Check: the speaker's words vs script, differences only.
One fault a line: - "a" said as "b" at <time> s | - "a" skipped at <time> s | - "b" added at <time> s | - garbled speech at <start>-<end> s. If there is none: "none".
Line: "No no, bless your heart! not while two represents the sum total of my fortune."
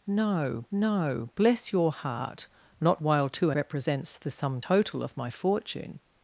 none